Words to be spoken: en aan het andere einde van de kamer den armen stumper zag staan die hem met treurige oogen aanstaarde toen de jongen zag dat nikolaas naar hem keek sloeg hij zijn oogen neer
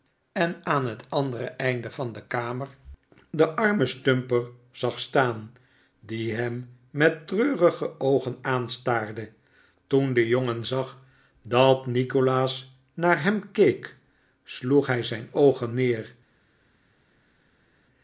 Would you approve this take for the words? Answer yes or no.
yes